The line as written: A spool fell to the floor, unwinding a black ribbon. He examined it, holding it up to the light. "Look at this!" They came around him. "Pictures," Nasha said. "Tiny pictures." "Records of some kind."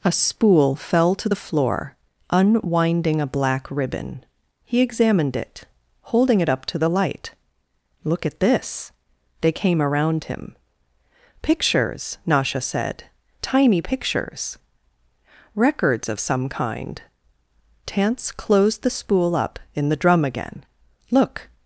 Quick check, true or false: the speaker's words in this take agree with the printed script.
false